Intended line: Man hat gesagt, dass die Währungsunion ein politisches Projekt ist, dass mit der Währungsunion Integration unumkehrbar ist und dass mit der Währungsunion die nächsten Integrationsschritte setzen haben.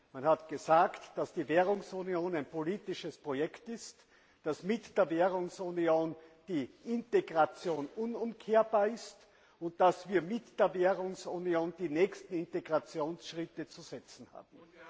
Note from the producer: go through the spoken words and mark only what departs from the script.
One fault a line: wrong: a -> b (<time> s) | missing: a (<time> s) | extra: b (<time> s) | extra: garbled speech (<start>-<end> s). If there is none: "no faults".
extra: die (6.5 s)
extra: wir (10.1 s)
extra: zu (13.7 s)